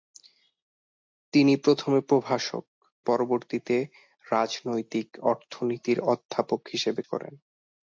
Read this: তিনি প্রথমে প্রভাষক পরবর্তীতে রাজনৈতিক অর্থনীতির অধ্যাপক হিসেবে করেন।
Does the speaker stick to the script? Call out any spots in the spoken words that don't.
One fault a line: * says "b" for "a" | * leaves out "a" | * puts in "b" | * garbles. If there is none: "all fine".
all fine